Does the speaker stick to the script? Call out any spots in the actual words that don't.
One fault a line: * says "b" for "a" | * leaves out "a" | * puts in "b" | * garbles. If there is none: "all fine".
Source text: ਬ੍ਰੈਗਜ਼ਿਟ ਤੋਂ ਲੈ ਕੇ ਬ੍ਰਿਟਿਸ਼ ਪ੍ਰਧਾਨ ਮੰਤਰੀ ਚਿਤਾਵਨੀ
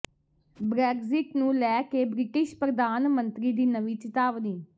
* says "ਨੂੰ" for "ਤੋਂ"
* puts in "ਦੀ ਨਵੀਂ"